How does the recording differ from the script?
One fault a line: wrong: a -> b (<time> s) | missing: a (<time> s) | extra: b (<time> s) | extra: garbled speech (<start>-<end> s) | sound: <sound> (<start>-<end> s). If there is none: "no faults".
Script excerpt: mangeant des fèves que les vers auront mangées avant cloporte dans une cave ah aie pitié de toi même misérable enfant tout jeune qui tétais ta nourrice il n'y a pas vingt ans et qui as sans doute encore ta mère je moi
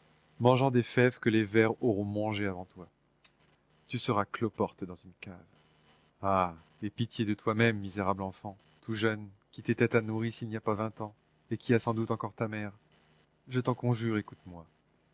extra: toi tu seras (2.6 s)
extra: t'en conjure écoute (13.6 s)